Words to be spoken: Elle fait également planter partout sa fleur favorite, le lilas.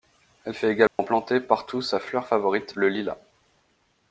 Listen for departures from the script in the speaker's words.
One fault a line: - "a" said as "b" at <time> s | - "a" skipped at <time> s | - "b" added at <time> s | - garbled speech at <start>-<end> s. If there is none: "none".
none